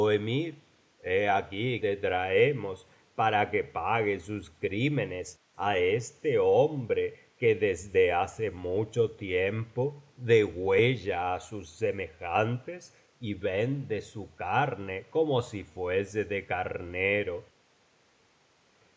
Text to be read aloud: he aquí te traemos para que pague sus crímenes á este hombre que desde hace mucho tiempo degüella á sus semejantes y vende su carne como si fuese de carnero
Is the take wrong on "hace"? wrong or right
right